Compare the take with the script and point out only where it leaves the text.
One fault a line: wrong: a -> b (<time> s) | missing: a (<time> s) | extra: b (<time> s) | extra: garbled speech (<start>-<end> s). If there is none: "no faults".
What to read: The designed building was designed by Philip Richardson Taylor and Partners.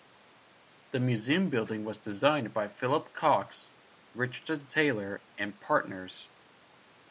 wrong: designed -> museum (1.0 s)
extra: Cox (3.1 s)